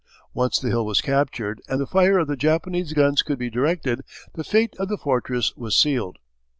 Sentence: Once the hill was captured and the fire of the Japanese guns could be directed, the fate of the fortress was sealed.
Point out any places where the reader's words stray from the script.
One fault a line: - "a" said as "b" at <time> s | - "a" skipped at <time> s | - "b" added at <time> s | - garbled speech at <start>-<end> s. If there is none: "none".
none